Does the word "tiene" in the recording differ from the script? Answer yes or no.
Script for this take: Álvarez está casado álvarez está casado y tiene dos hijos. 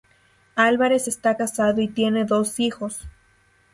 no